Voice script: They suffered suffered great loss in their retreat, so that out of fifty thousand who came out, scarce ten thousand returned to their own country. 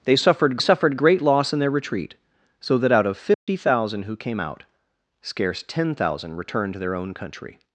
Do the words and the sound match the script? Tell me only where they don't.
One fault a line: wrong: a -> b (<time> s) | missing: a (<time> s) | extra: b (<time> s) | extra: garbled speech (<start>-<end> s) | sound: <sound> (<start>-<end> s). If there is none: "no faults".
sound: dropout (3.3-3.5 s)